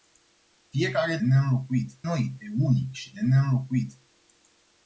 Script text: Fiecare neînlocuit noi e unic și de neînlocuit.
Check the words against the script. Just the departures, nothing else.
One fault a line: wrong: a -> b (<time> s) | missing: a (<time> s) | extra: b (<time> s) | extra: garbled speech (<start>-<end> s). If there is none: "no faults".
no faults